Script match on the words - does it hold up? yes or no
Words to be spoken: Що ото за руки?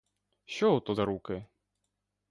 yes